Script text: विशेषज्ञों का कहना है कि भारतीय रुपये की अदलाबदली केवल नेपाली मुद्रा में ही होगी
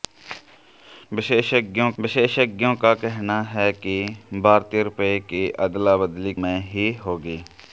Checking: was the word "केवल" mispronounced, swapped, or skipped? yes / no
yes